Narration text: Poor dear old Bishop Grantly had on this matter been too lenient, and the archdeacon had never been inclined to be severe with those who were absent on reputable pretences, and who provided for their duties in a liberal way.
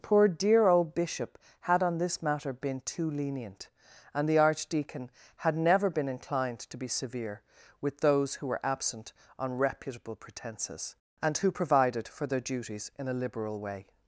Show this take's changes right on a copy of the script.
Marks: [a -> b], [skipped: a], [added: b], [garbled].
Poor dear old Bishop [skipped: Grantly] had on this matter been too lenient, and the archdeacon had never been inclined to be severe with those who were absent on reputable pretences, and who provided for their duties in a liberal way.